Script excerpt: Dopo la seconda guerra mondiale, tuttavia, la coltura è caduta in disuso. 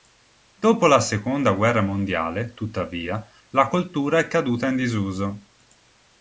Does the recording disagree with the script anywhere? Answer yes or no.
no